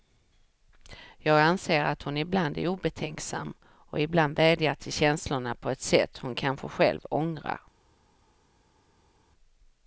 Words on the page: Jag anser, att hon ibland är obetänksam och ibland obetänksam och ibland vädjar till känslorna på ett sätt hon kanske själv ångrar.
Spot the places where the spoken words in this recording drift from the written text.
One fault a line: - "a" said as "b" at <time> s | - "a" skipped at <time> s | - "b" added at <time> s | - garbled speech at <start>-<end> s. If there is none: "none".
- "obetänksam och ibland" skipped at 4.3 s